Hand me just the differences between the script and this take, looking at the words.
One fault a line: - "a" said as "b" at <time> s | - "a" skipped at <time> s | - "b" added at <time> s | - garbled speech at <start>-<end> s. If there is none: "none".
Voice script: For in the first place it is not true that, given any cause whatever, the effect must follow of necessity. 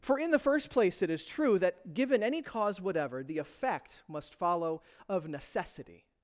- "not" skipped at 1.3 s